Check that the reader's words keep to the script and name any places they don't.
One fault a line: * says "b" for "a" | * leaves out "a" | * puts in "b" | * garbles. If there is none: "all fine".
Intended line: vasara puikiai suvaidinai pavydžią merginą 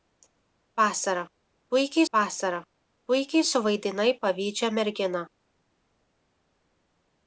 * puts in "vasara puikiai"